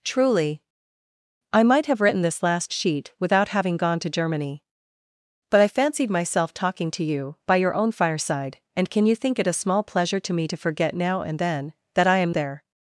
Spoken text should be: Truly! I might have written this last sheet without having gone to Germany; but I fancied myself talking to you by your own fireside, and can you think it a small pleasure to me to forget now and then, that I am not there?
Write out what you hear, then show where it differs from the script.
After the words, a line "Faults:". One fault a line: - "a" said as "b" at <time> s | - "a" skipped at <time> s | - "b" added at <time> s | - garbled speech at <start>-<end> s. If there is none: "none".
Truly! I might have written this last sheet without having gone to Germany; but I fancied myself talking to you by your own fireside, and can you think it a small pleasure to me to forget now and then, that I am there?
Faults:
- "not" skipped at 12.3 s